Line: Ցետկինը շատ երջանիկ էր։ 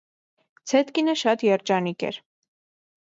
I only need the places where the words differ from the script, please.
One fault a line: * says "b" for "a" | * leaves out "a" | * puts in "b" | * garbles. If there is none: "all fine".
all fine